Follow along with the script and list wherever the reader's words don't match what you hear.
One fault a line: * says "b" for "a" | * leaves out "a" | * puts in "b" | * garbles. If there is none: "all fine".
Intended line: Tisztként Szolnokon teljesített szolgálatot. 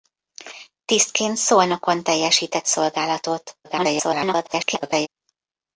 * garbles